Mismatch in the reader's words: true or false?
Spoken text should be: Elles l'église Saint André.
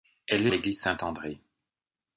false